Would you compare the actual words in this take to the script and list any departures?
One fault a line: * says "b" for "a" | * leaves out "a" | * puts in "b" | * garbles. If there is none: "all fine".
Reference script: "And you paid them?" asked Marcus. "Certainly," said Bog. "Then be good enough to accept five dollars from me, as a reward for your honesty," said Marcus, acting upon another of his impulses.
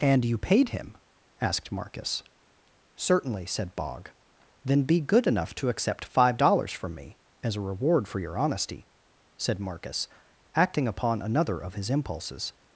* says "him" for "them"